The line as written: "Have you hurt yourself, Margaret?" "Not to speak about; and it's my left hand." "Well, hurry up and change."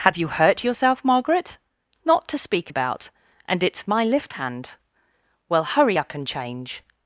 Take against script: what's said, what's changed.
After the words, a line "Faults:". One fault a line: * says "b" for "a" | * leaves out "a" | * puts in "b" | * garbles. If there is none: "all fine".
"Have you hurt yourself, Margaret?" "Not to speak about; and it's my lift hand." "Well, hurry up and change."
Faults:
* says "lift" for "left"